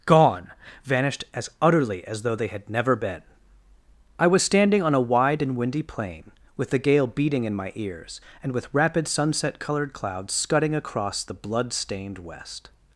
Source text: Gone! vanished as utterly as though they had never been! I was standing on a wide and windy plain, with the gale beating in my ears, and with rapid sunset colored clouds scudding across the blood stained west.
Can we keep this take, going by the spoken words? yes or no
yes